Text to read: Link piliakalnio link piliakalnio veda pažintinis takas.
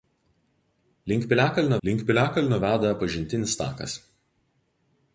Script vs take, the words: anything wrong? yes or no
no